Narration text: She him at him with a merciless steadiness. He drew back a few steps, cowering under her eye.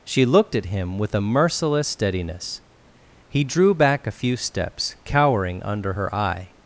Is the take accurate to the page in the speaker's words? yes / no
no